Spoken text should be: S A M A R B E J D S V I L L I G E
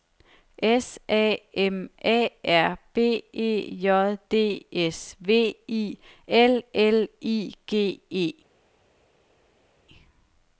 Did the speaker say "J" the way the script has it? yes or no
yes